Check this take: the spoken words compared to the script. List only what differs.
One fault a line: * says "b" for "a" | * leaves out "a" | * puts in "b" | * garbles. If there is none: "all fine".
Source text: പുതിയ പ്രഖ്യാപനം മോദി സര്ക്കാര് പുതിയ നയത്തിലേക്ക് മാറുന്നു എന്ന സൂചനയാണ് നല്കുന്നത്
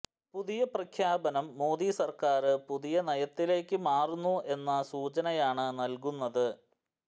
all fine